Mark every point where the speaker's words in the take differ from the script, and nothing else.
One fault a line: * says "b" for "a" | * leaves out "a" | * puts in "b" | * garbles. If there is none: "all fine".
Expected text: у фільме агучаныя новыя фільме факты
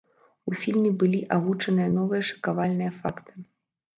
* puts in "былі"
* says "шакавальныя" for "фільме"